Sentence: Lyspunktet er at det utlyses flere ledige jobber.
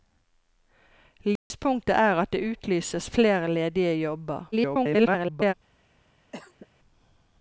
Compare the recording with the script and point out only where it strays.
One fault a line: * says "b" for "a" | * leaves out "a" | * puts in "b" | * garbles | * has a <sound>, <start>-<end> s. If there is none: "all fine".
* has a dropout, 1.4-1.5 s
* garbles
* has a cough, 6.3-6.7 s